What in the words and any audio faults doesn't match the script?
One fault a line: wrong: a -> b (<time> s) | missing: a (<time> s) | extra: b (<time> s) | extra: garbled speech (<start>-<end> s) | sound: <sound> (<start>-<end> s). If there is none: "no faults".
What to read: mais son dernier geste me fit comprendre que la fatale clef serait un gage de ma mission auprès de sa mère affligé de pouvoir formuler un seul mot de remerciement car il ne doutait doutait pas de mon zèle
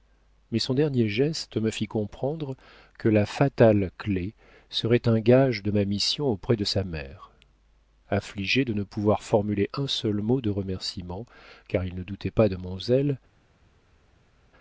extra: ne (8.7 s)
missing: doutait (12.3 s)